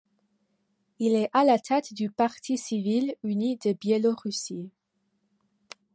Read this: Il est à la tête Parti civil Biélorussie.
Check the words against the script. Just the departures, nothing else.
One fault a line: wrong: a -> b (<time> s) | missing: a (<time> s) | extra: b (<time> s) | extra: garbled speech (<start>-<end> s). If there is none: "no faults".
extra: du (1.9 s)
extra: uni de (3.2 s)